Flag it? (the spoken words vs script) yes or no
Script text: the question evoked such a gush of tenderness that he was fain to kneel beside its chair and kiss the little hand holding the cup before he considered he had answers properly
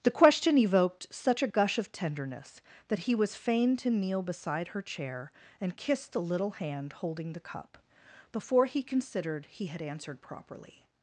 yes